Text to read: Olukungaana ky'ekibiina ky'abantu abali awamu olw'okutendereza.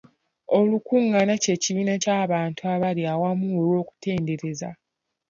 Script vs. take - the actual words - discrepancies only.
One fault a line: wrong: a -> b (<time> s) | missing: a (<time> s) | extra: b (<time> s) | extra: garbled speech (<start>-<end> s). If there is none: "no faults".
no faults